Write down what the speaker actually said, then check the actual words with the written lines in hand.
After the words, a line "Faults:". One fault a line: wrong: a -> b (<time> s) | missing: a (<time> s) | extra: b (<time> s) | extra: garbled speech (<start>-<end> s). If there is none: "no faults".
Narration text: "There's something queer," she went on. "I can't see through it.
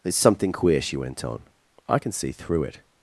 "There's something queer," she went on. "I can see through it.
Faults:
wrong: can't -> can (2.0 s)